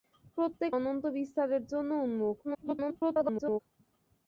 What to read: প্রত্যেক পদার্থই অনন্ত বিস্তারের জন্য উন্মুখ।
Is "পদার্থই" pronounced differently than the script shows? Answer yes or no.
yes